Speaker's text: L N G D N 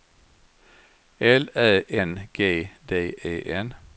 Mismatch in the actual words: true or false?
true